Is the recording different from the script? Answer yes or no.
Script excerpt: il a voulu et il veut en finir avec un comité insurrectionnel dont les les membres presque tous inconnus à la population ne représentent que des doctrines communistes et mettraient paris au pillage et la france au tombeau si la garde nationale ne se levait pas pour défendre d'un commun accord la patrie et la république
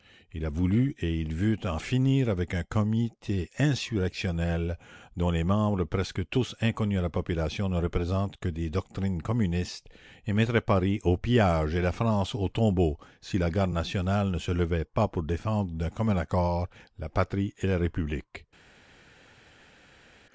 yes